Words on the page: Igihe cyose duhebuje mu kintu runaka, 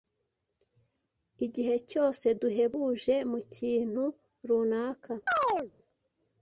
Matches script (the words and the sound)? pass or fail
fail